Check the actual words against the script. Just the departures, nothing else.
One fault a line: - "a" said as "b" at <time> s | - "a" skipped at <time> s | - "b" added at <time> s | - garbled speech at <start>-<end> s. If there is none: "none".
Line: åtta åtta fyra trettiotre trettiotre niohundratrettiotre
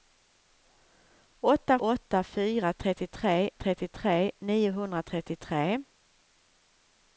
none